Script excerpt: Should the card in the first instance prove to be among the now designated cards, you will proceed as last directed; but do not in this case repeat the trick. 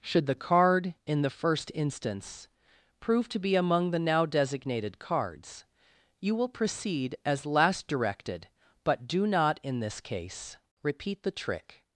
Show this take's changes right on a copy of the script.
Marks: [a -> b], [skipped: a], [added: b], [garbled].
Should the card in the first instance prove to be among the now designated cards, you will proceed as last directed; but do not in this case repeat the trick.